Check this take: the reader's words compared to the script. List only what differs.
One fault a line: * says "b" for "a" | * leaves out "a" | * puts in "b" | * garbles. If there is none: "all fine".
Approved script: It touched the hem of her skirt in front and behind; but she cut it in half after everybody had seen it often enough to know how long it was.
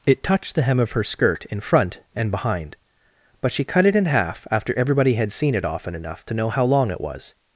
all fine